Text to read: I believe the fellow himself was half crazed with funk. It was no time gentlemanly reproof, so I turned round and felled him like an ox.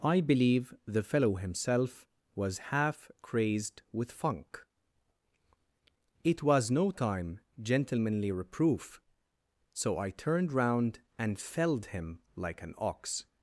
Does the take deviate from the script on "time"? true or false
false